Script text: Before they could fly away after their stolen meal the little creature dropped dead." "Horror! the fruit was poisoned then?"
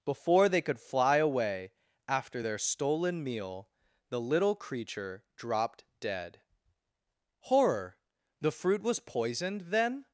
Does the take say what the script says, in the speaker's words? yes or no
yes